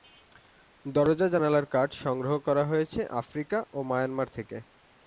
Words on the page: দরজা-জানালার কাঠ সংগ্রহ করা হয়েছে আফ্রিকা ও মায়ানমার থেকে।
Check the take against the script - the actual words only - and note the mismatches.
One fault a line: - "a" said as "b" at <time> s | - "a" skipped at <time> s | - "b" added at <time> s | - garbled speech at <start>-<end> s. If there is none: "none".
none